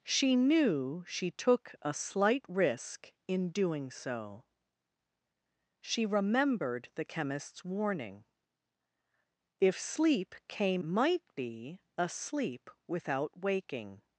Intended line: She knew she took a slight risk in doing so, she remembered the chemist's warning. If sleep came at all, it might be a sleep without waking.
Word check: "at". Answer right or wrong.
wrong